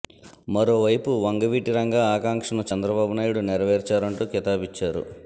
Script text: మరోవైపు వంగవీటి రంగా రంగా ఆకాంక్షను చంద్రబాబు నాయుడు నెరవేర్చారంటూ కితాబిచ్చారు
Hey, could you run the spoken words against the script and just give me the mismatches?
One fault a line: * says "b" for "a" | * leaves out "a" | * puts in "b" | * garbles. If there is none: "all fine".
* leaves out "రంగా"